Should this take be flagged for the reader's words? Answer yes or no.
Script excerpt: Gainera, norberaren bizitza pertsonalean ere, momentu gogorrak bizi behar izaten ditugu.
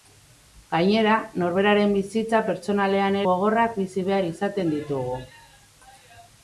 yes